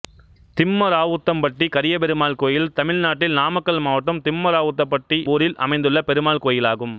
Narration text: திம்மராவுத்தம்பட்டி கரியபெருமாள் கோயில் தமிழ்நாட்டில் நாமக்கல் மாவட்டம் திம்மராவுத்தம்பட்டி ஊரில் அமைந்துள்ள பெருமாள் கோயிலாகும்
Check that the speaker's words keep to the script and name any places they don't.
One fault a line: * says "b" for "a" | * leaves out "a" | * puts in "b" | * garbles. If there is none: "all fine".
all fine